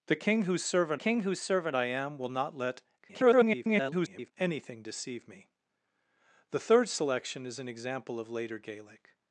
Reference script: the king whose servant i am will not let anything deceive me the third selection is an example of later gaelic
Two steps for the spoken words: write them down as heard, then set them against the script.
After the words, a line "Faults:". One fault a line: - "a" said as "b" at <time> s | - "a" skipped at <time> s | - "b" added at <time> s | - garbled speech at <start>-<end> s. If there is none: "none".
the king whose servant king whose servant i am will not let [garbled] anything deceive me the third selection is an example of later gaelic
Faults:
- "king whose servant" added at 0.9 s
- garbled speech at 3.0-4.3 s